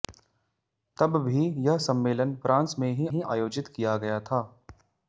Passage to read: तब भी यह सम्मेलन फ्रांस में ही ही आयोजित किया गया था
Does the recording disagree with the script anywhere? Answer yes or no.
no